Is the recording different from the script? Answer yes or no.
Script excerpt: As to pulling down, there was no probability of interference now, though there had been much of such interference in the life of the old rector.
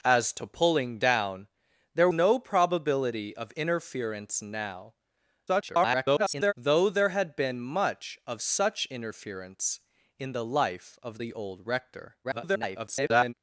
yes